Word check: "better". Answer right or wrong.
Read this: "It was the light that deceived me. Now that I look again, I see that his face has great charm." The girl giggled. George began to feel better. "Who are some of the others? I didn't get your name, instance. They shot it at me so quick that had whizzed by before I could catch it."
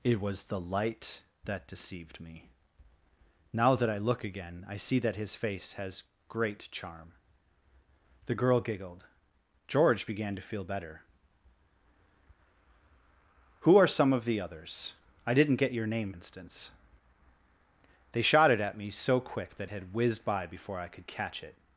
right